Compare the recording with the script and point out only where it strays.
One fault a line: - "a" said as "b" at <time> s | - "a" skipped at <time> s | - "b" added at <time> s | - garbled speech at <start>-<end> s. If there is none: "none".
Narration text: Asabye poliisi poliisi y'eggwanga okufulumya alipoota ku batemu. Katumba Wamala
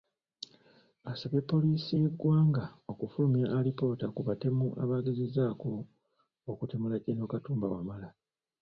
- "poliisi" skipped at 1.9 s
- "abaagezezzaako okutemula Gen" added at 4.8 s